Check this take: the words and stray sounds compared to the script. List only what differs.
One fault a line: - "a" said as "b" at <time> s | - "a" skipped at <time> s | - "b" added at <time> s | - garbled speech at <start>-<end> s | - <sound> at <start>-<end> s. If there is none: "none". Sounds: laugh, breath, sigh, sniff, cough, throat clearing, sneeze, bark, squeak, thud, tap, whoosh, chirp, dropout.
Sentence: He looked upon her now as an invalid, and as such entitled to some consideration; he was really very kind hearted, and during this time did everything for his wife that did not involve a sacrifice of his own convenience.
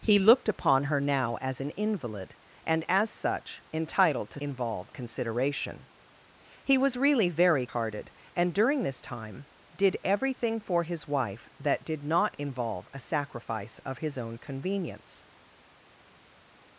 - "some" said as "involve" at 4.4 s
- "kind" skipped at 7.7 s